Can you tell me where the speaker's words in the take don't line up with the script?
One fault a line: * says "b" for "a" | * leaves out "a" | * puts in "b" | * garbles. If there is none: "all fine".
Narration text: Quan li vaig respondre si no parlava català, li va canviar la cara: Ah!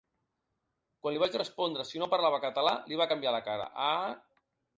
all fine